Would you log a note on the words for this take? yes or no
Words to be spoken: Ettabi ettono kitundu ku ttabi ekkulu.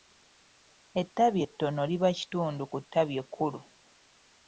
yes